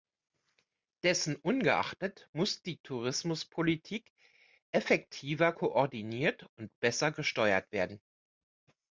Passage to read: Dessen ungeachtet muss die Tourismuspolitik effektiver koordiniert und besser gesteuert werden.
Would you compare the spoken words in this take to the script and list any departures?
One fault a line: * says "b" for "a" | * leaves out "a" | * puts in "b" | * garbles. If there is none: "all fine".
all fine